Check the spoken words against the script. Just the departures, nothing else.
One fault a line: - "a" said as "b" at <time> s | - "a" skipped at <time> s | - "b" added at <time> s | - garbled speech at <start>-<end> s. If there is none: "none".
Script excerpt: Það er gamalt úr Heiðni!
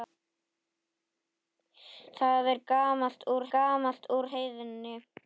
- "gamalt úr" added at 3.6 s